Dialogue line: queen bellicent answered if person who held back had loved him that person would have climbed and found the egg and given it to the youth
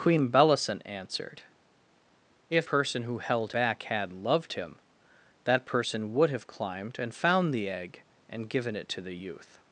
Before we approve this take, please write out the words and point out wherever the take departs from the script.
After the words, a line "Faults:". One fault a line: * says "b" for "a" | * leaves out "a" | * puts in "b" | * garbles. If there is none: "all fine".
queen bellicent answered if person who held back had loved him that person would have climbed and found the egg and given it to the youth
Faults:
all fine